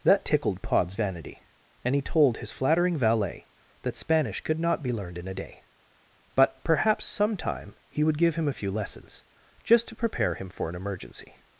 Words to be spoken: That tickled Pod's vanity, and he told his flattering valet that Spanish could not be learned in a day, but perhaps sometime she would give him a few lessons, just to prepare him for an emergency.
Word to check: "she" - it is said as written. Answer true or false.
false